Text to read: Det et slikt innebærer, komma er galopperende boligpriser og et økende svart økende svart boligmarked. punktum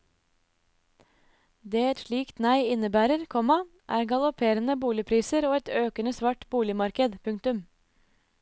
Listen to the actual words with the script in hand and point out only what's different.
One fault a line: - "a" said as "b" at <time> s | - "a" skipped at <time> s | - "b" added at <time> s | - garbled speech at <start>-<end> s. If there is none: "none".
- "nei" added at 2.4 s
- "økende svart" skipped at 6.4 s